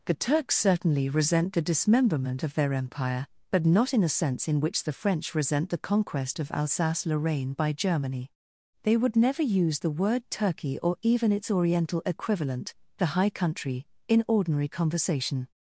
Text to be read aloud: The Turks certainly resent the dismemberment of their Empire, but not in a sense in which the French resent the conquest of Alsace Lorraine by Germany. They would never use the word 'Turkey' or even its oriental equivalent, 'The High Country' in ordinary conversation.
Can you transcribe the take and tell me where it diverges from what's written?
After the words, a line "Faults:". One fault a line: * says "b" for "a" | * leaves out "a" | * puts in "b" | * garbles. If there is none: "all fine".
The Turks certainly resent the dismemberment of their Empire, but not in a sense in which the French resent the conquest of Alsace Lorraine by Germany. They would never use the word 'Turkey' or even its oriental equivalent, 'The High Country' in ordinary conversation.
Faults:
all fine